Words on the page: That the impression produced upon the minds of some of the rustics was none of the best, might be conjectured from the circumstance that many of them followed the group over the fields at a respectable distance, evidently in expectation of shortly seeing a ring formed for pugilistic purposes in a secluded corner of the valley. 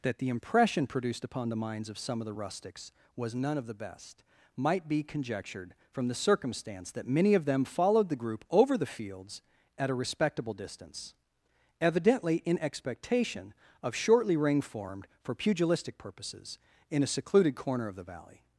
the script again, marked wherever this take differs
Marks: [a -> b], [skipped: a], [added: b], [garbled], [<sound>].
That the impression produced upon the minds of some of the rustics was none of the best, might be conjectured from the circumstance that many of them followed the group over the fields at a respectable distance, evidently in expectation of shortly [skipped: seeing a] ring formed for pugilistic purposes in a secluded corner of the valley.